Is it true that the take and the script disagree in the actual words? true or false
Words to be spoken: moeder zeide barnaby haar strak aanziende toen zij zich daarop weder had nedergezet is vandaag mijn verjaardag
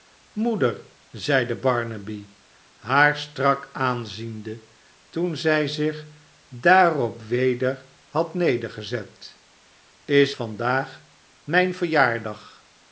false